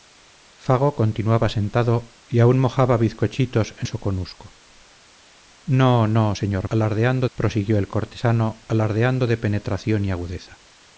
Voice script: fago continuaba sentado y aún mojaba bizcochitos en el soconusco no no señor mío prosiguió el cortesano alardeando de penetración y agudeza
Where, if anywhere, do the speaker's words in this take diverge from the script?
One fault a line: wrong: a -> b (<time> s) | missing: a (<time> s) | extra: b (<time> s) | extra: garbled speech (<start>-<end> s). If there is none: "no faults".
missing: el (3.9 s)
wrong: mío -> alardeando (6.7 s)